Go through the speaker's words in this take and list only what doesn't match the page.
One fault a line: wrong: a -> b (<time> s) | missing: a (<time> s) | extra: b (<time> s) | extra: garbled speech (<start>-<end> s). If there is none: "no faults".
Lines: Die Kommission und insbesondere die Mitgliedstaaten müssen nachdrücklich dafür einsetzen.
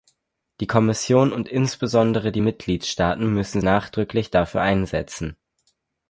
no faults